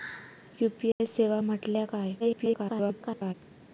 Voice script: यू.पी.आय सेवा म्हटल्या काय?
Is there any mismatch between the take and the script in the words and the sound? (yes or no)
yes